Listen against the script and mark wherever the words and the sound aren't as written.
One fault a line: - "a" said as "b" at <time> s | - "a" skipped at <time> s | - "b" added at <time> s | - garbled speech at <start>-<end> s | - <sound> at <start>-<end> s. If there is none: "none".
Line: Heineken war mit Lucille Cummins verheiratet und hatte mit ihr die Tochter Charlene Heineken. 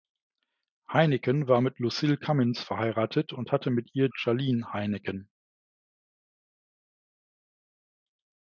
- "die Tochter" skipped at 4.1 s